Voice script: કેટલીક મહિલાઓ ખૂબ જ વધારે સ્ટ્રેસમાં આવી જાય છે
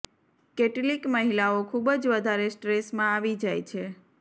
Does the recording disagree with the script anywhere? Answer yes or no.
no